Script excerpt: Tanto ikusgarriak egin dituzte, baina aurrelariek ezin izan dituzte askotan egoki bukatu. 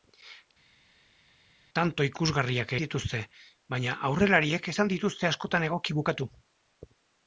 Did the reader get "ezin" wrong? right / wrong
wrong